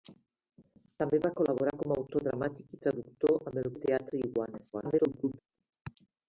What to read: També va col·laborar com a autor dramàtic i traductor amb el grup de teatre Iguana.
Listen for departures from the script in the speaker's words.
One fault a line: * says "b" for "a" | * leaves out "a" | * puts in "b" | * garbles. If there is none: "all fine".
* leaves out "grup"
* garbles